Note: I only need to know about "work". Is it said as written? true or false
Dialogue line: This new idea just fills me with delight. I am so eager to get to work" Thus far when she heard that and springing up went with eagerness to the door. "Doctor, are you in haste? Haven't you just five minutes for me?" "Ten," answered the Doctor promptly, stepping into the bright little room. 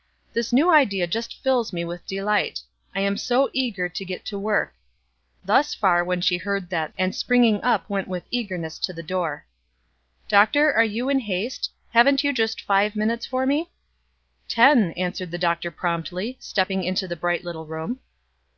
true